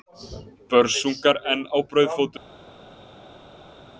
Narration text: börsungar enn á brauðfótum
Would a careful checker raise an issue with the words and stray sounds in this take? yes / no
no